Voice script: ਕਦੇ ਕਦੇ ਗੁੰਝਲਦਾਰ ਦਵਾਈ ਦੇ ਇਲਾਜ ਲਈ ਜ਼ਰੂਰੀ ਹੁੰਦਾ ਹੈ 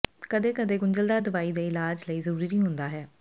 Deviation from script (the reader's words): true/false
false